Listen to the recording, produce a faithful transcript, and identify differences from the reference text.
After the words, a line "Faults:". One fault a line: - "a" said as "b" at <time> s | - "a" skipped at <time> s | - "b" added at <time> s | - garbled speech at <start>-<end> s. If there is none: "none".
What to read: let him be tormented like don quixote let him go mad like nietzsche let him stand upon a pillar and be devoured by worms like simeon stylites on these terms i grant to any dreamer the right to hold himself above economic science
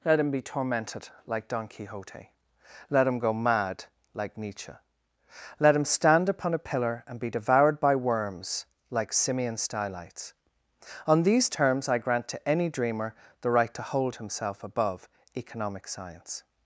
let him be tormented like don quixote let him go mad like nietzsche let him stand upon a pillar and be devoured by worms like simeon stylites on these terms i grant to any dreamer the right to hold himself above economic science
Faults:
none